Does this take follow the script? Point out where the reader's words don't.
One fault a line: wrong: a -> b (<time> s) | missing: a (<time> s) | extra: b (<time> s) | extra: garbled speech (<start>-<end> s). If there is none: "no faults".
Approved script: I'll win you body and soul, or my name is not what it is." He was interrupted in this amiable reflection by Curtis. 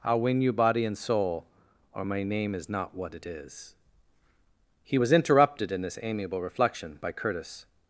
no faults